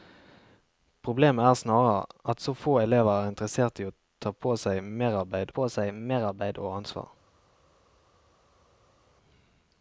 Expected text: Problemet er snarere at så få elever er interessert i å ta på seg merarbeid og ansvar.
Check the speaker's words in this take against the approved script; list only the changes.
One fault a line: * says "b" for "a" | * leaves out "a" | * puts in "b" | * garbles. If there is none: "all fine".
* puts in "på seg merarbeid"